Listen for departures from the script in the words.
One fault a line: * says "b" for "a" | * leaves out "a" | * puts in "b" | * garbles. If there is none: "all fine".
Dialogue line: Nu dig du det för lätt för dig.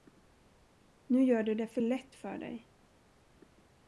* says "gör" for "dig"